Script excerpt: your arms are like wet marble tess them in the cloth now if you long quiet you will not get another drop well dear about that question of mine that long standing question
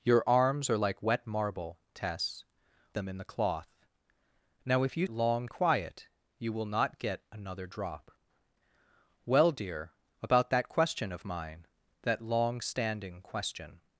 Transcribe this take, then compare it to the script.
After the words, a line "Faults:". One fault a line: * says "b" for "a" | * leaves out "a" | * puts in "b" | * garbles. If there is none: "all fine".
your arms are like wet marble tess them in the cloth now if you long quiet you will not get another drop well dear about that question of mine that long standing question
Faults:
all fine